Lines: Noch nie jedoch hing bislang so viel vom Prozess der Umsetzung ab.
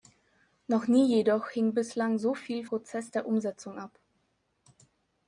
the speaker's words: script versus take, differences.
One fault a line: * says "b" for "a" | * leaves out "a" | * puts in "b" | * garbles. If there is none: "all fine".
* leaves out "vom"